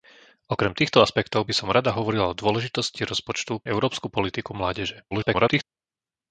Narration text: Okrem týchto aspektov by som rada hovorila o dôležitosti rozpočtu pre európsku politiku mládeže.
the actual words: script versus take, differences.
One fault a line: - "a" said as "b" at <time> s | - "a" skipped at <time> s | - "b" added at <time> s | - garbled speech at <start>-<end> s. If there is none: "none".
- "pre" skipped at 3.6 s
- garbled speech at 5.1-5.6 s